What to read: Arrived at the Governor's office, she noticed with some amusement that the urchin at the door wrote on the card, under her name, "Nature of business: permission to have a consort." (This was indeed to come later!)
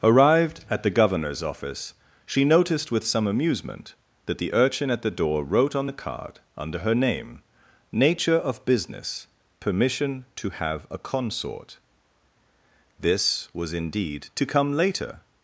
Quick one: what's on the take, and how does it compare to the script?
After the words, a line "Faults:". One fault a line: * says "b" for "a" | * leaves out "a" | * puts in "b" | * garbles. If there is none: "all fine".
Arrived at the Governor's office, she noticed with some amusement that the urchin at the door wrote on the card, under her name, "Nature of business: permission to have a consort." (This was indeed to come later!)
Faults:
all fine